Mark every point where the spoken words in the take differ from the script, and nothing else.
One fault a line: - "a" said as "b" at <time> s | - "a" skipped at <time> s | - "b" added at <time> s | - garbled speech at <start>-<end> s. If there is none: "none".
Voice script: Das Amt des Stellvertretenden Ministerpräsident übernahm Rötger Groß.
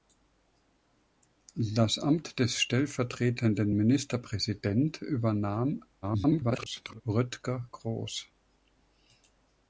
- garbled speech at 6.0-7.0 s